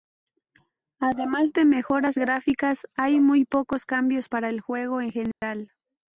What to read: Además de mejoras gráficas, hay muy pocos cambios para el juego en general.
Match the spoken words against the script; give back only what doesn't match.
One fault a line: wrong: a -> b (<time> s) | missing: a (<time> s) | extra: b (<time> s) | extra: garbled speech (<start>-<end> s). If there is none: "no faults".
no faults